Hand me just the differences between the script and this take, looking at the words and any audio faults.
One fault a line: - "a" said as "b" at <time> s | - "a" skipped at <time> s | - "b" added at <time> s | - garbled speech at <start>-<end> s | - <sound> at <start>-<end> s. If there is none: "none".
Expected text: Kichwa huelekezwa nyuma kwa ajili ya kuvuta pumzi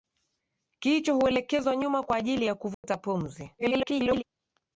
- dropout at 2.7-2.8 s
- garbled speech at 3.6-4.2 s